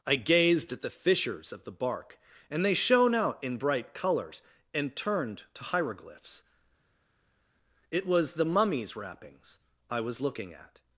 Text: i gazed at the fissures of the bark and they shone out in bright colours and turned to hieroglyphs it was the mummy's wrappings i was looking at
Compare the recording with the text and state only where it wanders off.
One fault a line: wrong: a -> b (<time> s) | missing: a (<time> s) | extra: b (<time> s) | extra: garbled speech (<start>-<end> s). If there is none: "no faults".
no faults